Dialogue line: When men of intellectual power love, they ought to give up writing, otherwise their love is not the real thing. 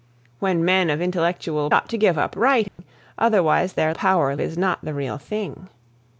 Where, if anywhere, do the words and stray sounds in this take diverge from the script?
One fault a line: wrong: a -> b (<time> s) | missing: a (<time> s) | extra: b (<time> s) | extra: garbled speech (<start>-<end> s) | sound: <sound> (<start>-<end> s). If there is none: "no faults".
missing: power love they (1.7 s)
sound: dropout (2.7-2.8 s)
wrong: love -> power (3.9 s)